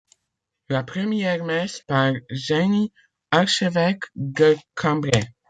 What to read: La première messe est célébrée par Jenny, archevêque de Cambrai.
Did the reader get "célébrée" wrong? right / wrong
wrong